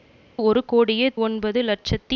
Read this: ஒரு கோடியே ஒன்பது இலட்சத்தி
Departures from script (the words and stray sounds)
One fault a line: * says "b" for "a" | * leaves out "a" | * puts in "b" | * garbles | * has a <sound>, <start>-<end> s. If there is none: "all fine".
all fine